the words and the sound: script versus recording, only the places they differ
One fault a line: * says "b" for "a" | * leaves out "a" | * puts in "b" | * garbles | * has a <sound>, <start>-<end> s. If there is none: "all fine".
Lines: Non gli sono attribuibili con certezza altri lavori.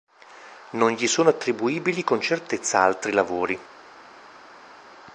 all fine